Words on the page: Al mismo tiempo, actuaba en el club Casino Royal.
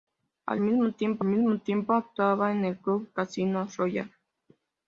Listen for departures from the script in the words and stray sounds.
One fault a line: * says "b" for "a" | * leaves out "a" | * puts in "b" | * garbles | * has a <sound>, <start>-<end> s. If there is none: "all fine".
* puts in "mismo tiempo"